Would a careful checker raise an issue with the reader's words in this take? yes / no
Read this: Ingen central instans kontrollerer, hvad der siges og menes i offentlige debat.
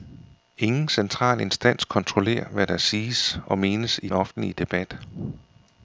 no